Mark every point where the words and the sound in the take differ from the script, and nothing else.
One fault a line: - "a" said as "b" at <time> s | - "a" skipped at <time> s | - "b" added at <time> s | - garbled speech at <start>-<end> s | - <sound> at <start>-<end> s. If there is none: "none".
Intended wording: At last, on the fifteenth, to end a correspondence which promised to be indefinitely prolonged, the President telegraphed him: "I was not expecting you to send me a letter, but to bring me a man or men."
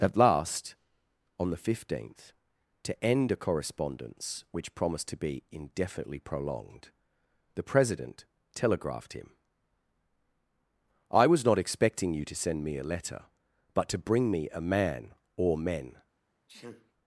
- sneeze at 16.5-16.9 s